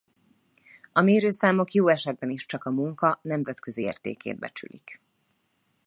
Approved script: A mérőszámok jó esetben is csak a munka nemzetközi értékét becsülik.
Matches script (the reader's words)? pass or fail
pass